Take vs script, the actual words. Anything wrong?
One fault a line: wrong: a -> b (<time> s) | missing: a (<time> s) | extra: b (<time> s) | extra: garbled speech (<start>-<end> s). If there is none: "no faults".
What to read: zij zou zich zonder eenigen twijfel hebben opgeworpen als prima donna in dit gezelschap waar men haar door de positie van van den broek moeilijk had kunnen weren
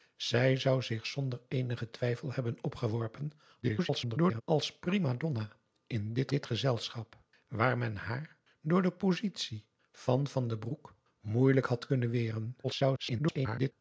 extra: garbled speech (3.6-4.4 s)
extra: dit (6.3 s)
extra: garbled speech (12.6-13.7 s)